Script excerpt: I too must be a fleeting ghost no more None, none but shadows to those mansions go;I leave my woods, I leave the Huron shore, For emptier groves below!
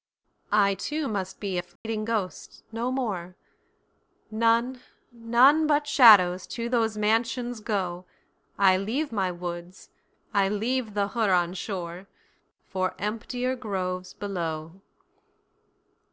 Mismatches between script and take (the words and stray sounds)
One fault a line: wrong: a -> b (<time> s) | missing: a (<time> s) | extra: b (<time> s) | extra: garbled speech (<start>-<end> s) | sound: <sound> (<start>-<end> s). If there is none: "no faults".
sound: dropout (1.8-1.8 s)